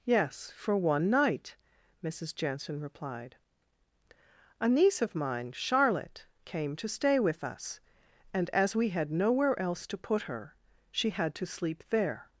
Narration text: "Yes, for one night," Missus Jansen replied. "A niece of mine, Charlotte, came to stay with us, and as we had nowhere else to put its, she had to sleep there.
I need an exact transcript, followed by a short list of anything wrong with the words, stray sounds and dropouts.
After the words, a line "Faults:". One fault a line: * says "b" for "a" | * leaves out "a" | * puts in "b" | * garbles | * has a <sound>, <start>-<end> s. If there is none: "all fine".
"Yes, for one night," Missus Jansen replied. "A niece of mine, Charlotte, came to stay with us, and as we had nowhere else to put her, she had to sleep there.
Faults:
* says "her" for "its"